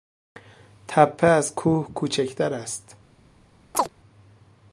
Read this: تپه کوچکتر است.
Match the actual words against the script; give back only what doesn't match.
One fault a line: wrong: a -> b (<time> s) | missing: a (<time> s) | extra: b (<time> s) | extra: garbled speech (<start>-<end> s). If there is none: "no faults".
extra: از کوه (1.3 s)